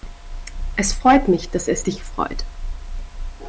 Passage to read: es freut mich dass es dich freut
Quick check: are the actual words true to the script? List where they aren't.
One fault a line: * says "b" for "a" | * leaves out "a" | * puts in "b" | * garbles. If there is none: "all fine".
all fine